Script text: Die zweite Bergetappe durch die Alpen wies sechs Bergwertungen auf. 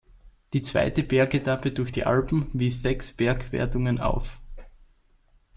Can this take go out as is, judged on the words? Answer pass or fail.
pass